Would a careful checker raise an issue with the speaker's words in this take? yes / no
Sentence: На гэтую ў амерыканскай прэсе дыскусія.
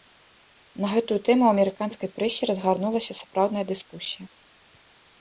yes